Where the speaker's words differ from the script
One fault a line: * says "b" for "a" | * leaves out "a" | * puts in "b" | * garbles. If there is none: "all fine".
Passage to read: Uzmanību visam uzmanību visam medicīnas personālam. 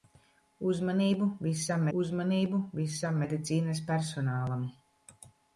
all fine